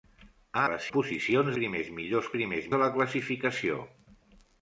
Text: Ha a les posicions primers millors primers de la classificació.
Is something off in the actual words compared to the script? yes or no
no